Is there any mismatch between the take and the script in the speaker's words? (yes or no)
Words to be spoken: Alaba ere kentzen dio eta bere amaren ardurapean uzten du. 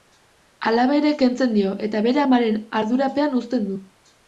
no